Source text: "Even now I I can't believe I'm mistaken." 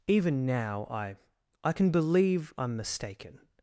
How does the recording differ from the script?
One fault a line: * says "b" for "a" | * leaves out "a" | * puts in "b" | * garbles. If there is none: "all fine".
* says "can" for "can't"